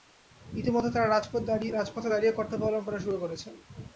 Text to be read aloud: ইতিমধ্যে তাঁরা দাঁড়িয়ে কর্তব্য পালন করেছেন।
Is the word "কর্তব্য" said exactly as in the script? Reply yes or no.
yes